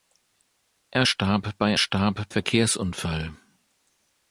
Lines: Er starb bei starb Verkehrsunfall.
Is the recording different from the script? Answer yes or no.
no